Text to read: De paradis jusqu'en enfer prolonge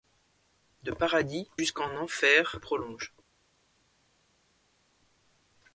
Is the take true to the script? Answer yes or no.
yes